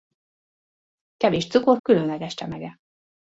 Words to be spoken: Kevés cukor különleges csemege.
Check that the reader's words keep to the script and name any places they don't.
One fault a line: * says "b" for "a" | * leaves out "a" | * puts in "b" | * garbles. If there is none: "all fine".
all fine